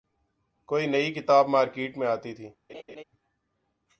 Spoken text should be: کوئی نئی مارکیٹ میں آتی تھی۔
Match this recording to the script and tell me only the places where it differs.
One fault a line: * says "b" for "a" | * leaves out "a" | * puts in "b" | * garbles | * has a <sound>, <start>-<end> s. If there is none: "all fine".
* puts in "کتاب"
* has a laugh, 2.7-3.0 s